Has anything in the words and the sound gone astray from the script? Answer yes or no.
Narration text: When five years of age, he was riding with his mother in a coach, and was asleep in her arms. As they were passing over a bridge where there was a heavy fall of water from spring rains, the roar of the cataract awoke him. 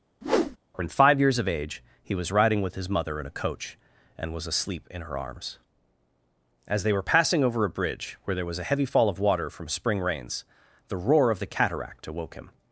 yes